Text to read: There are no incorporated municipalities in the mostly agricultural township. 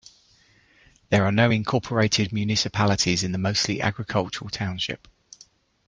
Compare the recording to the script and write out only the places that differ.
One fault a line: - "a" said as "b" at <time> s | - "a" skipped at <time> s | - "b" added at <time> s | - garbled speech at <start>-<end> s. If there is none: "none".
none